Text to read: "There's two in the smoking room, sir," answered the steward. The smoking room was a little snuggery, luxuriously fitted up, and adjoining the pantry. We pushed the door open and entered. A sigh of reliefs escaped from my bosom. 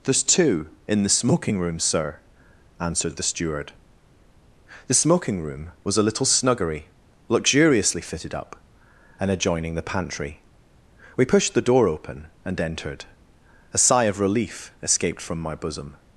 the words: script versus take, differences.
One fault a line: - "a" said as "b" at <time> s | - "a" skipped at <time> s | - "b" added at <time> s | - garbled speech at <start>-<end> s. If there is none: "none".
- "reliefs" said as "relief" at 14.2 s